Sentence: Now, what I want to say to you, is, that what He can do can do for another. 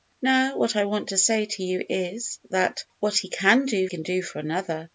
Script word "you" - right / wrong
right